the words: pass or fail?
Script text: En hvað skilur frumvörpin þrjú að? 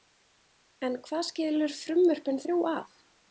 pass